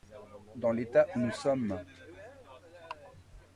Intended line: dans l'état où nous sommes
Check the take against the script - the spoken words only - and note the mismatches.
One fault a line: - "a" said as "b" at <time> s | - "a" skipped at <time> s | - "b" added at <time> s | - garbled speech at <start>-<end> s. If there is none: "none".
none